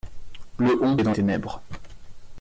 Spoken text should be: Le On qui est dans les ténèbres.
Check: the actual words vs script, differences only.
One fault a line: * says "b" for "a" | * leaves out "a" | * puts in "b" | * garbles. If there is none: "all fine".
* leaves out "qui"
* leaves out "les"